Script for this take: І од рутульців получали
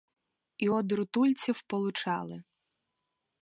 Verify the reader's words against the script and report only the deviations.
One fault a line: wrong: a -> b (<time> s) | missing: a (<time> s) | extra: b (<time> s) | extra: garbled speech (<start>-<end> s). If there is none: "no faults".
no faults